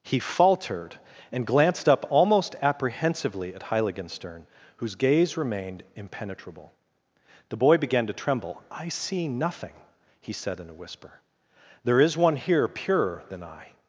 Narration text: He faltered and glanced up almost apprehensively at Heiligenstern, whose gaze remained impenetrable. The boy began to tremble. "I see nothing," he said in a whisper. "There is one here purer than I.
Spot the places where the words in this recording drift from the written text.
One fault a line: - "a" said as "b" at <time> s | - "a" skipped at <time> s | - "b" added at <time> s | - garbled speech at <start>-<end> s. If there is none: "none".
none